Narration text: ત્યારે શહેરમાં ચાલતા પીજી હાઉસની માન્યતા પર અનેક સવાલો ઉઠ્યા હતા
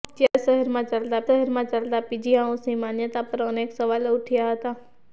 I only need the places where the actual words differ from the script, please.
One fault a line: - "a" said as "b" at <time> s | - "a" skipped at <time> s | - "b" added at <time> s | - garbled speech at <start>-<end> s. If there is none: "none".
- "શહેરમાં ચાલતા" added at 1.3 s